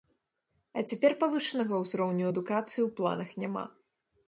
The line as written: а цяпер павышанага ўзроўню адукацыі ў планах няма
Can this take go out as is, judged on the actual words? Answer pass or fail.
pass